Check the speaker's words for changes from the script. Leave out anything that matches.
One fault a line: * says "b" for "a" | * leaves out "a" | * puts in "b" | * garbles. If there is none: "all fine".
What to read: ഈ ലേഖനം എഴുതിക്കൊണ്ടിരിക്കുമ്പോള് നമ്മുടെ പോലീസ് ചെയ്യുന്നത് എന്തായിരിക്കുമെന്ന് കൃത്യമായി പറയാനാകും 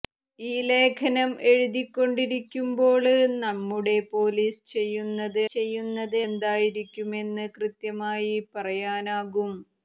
* puts in "ചെയ്യുന്നത്"